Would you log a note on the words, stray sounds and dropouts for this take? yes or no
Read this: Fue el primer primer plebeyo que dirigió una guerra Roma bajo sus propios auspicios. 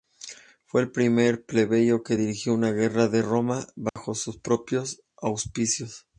yes